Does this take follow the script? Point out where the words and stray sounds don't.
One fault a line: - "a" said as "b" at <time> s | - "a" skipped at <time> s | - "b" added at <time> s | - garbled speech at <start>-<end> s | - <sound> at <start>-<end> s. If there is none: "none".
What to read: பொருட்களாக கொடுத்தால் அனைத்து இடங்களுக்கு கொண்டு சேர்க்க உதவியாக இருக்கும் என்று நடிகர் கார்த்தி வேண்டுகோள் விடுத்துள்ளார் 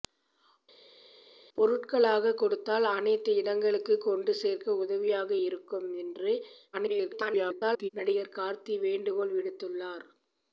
- garbled speech at 6.7-7.9 s